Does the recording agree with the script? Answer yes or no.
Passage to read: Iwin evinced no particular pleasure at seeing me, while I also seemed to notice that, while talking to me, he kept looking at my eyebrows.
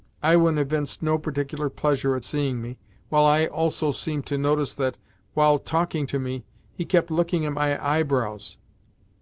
yes